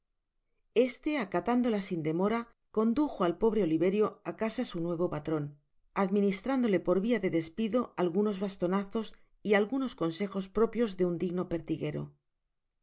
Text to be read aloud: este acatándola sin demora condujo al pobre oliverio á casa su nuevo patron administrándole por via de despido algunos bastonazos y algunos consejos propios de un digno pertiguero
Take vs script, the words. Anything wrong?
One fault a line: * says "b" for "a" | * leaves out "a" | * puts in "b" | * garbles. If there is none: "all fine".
all fine